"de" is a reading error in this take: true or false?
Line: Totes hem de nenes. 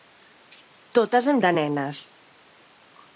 false